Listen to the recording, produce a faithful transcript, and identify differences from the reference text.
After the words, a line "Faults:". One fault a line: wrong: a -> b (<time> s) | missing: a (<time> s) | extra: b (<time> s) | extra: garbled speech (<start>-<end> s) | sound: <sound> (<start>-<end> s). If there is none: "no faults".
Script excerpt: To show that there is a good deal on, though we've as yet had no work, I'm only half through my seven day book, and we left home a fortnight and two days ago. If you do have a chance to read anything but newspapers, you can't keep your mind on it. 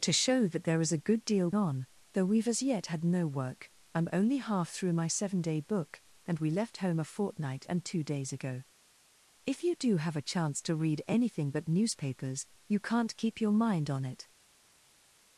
To show that there is a good deal on, though we've as yet had no work, I'm only half through my seven day book, and we left home a fortnight and two days ago. If you do have a chance to read anything but newspapers, you can't keep your mind on it.
Faults:
no faults